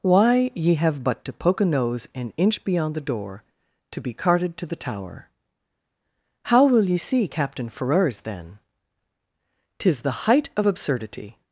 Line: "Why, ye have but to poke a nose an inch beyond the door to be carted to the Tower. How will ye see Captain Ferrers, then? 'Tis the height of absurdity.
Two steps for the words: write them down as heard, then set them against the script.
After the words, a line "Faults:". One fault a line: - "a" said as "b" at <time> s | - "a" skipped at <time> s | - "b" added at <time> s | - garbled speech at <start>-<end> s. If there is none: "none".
"Why, ye have but to poke a nose an inch beyond the door to be carted to the Tower. How will ye see Captain Ferrers, then? 'Tis the height of absurdity.
Faults:
none